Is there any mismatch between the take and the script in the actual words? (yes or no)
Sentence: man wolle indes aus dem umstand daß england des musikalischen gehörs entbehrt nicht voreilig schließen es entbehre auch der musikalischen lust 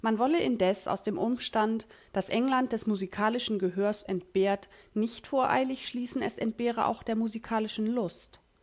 no